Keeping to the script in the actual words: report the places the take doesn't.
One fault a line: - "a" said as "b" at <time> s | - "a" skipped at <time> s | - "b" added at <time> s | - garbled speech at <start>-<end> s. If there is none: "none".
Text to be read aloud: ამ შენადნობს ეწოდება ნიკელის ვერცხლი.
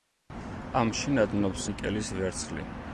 - "ეწოდება" skipped at 1.7 s